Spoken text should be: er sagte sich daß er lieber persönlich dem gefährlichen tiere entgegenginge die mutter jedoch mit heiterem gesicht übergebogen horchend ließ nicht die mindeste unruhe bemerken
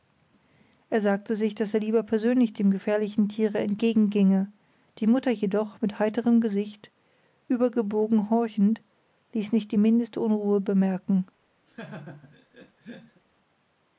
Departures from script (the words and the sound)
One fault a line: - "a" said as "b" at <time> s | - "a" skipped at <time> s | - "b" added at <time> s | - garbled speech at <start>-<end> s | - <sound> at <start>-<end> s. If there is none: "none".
- laugh at 11.7-13.2 s